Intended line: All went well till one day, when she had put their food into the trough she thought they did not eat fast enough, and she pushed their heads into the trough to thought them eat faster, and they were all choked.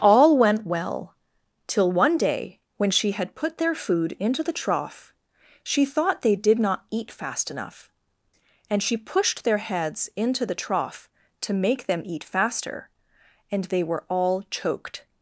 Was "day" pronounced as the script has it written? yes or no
yes